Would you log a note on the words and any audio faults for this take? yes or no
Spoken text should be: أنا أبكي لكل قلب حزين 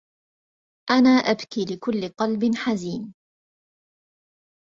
no